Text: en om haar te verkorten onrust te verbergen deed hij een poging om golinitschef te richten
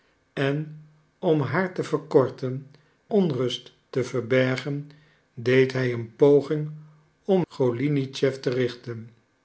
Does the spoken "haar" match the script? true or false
true